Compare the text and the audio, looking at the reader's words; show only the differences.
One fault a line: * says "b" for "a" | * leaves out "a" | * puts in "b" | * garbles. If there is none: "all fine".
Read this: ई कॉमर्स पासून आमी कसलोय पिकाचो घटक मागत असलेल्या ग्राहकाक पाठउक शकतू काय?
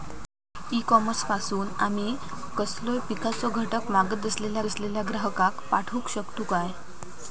* puts in "असलेल्या"